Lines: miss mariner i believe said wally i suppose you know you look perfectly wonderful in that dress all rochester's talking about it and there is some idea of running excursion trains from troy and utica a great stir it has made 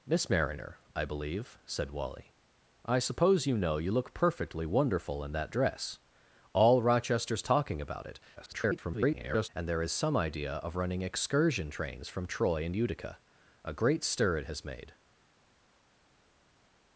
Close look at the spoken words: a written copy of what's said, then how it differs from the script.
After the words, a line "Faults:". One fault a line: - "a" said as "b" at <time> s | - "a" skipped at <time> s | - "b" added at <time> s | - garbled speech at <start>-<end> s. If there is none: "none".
miss mariner i believe said wally i suppose you know you look perfectly wonderful in that dress all rochester's talking about it [garbled] and there is some idea of running excursion trains from troy and utica a great stir it has made
Faults:
- garbled speech at 8.4-9.5 s